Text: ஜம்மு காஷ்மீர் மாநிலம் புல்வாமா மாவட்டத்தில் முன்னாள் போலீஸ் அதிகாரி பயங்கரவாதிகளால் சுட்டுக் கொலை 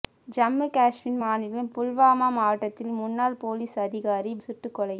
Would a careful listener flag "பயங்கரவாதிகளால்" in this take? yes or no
yes